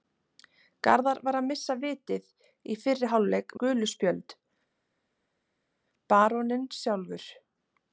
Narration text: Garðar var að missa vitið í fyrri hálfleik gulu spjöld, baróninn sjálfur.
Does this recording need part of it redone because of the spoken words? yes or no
no